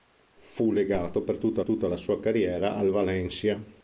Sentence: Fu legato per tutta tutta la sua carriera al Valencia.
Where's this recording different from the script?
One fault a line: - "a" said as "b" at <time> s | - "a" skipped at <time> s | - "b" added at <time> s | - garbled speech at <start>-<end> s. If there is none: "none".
none